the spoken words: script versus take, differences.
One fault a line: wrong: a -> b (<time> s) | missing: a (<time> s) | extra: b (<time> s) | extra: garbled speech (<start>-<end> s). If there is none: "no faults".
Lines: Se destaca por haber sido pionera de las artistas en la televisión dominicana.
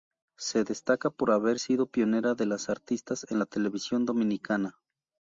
no faults